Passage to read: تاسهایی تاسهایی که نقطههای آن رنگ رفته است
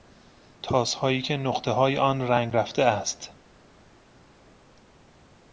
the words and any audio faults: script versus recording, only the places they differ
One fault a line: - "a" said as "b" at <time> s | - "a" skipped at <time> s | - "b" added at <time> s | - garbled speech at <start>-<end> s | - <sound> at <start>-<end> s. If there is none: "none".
- "تاسهایی" skipped at 1.2 s